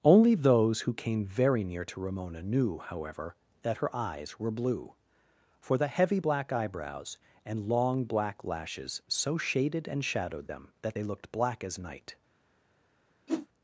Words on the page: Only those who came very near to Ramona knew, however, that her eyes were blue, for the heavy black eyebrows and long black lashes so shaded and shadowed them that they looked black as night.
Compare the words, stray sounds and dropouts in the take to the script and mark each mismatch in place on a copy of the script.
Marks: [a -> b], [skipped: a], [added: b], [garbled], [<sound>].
Only those who came very near to Ramona knew, however, that her eyes were blue, for the heavy black eyebrows and long black lashes so shaded and shadowed them that they looked black as night. [whoosh]